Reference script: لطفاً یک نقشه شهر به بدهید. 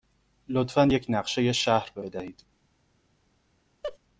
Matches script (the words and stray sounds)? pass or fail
fail